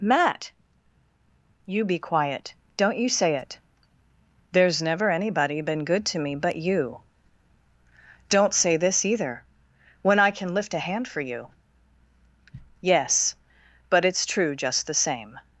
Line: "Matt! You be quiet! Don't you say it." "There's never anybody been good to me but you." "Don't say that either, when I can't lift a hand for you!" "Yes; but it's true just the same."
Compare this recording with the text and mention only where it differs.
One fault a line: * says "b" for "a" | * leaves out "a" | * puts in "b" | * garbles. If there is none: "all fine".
* says "this" for "that"
* says "can" for "can't"